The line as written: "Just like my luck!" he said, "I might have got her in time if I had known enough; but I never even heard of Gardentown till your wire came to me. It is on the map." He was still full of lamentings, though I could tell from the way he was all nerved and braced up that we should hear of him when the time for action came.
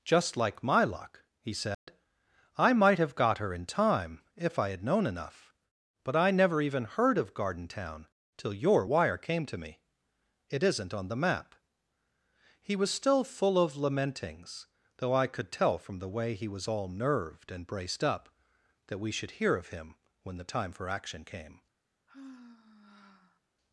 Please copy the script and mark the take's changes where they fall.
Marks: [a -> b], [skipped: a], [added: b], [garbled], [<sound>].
"Just like my luck!" he said, [dropout] "I might have got her in time if I had known enough; but I never even heard of Gardentown till your wire came to me. It [is -> isn't] on the map." He was still full of lamentings, though I could tell from the way he was all nerved and braced up that we should hear of him when the time for action came. [sigh]